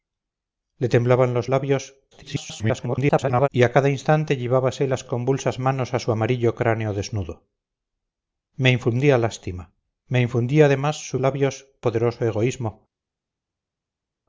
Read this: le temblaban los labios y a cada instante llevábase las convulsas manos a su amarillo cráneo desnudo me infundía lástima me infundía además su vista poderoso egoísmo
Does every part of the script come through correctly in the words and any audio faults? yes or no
no